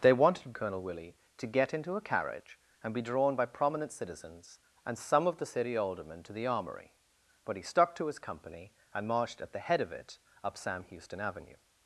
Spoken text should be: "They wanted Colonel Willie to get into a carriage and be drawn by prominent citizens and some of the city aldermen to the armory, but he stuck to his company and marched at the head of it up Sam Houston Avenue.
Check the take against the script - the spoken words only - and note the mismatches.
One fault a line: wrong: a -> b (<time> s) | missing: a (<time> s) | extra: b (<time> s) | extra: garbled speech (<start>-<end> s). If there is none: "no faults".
no faults